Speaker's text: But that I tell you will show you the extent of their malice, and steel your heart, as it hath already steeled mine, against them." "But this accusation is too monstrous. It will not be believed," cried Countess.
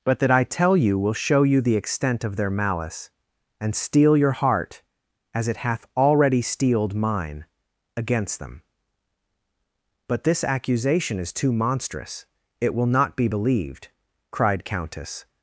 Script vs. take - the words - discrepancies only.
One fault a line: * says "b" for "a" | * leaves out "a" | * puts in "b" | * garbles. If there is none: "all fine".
all fine